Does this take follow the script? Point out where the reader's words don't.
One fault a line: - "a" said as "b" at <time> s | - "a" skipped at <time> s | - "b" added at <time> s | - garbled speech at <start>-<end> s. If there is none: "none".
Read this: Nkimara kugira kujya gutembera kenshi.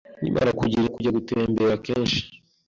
none